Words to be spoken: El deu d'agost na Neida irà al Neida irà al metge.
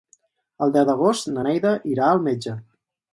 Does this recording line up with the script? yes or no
no